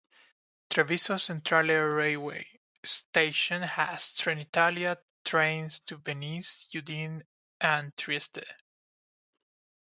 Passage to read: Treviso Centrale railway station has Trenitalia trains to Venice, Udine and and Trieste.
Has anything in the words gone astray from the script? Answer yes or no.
yes